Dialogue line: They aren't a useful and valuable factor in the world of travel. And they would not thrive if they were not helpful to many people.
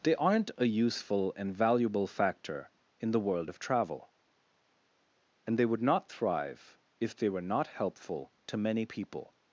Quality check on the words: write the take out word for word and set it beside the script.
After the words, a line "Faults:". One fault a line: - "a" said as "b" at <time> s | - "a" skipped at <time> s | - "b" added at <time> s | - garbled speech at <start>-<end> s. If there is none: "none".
They aren't a useful and valuable factor in the world of travel. And they would not thrive if they were not helpful to many people.
Faults:
none